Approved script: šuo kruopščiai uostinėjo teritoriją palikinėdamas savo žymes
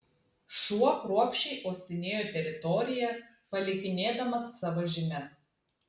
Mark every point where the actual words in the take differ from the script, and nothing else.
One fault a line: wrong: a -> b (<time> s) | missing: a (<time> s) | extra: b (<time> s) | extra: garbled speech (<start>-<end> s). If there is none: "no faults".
no faults